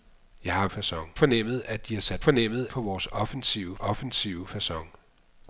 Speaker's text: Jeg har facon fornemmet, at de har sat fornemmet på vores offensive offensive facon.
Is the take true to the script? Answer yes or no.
yes